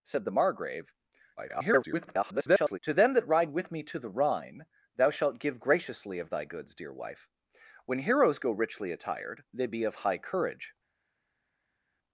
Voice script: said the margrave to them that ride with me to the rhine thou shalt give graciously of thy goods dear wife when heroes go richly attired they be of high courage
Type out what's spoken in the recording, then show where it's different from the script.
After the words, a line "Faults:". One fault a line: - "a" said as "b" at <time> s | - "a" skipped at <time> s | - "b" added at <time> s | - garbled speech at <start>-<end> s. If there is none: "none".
said the margrave [garbled] to them that ride with me to the rhine thou shalt give graciously of thy goods dear wife when heroes go richly attired they be of high courage
Faults:
- garbled speech at 1.4-2.8 s